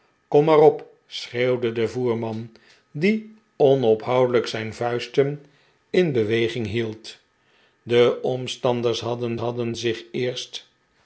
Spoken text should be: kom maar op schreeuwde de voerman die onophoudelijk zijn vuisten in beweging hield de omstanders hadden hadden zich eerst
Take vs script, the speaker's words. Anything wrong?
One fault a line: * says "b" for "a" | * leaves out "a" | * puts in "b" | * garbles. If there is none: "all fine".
all fine